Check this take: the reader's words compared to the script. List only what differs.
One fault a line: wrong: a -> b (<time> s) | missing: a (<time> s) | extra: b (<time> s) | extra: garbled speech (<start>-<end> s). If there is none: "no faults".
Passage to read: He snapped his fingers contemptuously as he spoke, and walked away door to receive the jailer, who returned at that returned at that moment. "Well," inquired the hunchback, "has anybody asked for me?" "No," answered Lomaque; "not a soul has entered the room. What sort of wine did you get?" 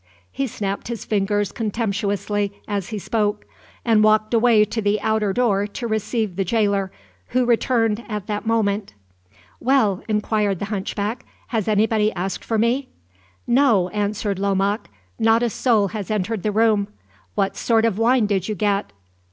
extra: to the outer (4.7 s)
missing: returned at that (8.4 s)